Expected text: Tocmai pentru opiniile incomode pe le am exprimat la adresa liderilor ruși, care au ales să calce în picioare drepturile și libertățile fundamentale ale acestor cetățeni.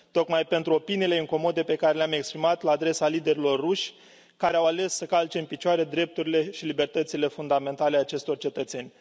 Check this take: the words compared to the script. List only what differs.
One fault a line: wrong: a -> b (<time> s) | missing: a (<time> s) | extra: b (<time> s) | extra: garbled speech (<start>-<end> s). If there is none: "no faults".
extra: care (1.8 s)